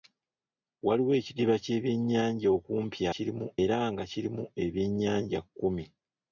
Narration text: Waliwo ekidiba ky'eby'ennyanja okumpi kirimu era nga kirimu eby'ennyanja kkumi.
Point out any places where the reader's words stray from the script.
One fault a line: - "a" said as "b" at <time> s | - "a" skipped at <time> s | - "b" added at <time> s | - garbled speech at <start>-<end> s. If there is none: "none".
none